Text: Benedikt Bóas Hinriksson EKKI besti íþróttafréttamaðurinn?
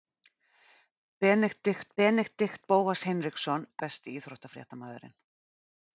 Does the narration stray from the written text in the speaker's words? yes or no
yes